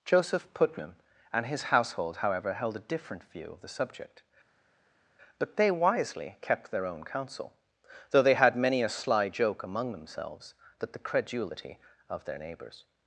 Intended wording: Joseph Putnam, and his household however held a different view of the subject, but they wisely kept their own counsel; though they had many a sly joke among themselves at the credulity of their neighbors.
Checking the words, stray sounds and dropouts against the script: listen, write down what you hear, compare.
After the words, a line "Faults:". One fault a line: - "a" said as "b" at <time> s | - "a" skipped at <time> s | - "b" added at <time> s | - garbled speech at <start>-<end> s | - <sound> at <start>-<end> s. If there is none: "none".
Joseph Putnam, and his household however held a different view of the subject, but they wisely kept their own counsel; though they had many a sly joke among themselves that the credulity of their neighbors.
Faults:
- "at" said as "that" at 10.8 s